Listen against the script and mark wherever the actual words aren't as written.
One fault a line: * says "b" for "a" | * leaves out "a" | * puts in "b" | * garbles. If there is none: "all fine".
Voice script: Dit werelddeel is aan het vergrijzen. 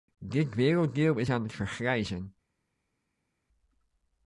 all fine